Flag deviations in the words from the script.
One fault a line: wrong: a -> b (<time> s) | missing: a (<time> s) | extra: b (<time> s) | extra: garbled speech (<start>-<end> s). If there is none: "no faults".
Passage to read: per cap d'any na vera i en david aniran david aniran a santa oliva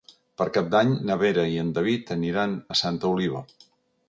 missing: david aniran (2.6 s)